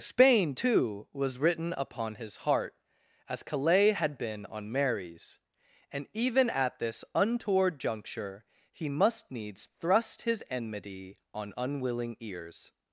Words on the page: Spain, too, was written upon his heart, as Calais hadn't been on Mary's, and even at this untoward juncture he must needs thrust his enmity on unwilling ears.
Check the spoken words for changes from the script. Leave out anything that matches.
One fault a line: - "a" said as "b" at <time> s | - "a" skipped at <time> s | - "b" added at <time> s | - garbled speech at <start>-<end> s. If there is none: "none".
- "hadn't" said as "had" at 3.9 s